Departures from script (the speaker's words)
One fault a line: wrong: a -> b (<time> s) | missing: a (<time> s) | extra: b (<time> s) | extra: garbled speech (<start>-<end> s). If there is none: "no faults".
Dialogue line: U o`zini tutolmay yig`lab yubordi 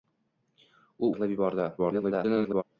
missing: o`zini tutolmay (1.1 s)
extra: garbled speech (1.8-2.6 s)